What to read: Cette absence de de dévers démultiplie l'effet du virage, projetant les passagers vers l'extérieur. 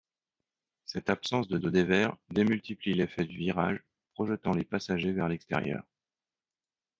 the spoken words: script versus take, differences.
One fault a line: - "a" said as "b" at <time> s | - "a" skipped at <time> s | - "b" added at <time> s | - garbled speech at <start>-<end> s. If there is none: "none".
none